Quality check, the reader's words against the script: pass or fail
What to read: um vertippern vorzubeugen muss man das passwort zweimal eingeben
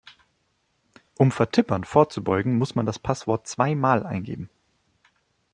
pass